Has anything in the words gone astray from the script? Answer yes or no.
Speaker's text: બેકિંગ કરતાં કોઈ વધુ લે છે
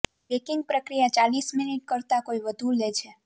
yes